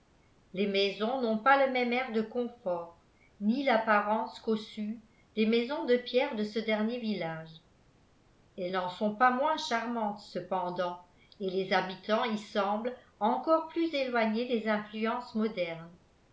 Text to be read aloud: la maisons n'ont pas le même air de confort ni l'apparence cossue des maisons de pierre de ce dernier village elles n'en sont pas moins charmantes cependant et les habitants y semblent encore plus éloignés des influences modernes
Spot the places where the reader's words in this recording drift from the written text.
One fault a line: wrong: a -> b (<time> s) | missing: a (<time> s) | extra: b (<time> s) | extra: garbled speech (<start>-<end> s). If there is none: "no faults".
wrong: la -> les (0.5 s)